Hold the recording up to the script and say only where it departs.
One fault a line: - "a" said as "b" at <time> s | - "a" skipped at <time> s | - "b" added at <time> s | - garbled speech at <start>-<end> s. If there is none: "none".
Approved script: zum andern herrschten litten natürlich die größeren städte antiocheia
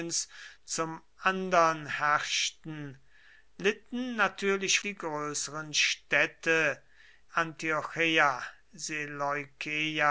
none